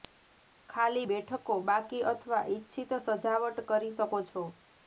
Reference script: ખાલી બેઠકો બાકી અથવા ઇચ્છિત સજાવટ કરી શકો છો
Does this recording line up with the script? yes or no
yes